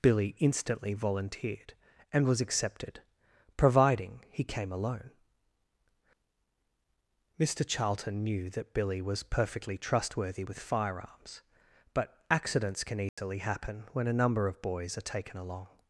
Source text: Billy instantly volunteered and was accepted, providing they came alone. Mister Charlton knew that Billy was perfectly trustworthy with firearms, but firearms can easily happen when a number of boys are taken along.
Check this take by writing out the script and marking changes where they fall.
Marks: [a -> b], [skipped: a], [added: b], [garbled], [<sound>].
Billy instantly volunteered and was accepted, providing [they -> he] came alone. Mister Charlton knew that Billy was perfectly trustworthy with firearms, but [firearms -> accidents] can easily [dropout] happen when a number of boys are taken along.